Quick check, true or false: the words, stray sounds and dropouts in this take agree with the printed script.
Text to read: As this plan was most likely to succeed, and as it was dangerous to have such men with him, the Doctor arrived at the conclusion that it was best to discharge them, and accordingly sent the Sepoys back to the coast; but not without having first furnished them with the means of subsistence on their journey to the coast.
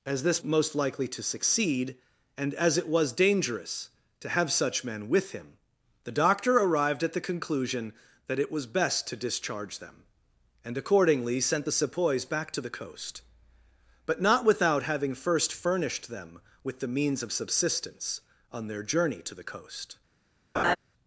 false